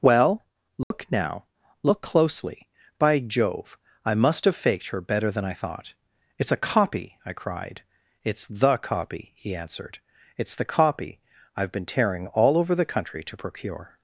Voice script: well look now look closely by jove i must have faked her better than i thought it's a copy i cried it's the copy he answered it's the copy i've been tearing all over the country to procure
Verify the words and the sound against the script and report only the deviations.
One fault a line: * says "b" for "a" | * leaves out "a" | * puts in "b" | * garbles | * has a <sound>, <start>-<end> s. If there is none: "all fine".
* has a dropout, 0.8-0.9 s